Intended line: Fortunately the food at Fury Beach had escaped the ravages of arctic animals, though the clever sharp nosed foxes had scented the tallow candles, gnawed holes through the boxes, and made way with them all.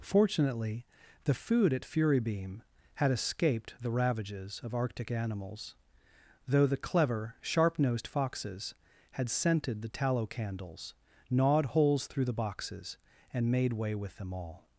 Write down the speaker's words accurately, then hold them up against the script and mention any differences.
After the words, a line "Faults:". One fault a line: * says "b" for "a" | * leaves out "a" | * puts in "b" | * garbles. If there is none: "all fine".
Fortunately the food at Fury Beam had escaped the ravages of arctic animals, though the clever sharp nosed foxes had scented the tallow candles, gnawed holes through the boxes, and made way with them all.
Faults:
* says "Beam" for "Beach"